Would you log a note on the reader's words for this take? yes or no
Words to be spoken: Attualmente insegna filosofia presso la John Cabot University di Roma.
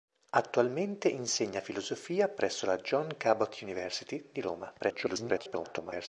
yes